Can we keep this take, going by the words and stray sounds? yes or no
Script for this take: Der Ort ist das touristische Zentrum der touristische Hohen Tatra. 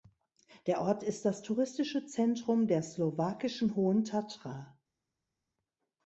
no